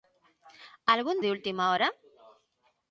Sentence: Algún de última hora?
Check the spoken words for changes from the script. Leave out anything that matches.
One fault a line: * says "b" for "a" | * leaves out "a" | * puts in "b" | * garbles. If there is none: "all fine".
all fine